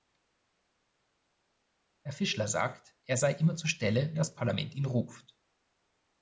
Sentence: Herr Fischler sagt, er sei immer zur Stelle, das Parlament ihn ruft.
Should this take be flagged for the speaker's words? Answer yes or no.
no